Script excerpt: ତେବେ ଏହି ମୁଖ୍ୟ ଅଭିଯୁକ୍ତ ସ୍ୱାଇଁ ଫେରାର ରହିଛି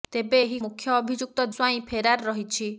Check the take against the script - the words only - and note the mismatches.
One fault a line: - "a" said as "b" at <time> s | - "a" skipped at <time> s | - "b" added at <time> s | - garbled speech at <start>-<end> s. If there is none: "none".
none